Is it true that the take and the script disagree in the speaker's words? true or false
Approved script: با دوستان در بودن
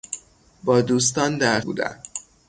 false